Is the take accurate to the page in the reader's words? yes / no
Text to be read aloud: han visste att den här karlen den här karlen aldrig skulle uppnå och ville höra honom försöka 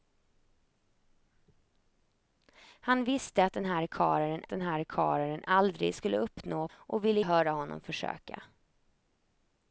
yes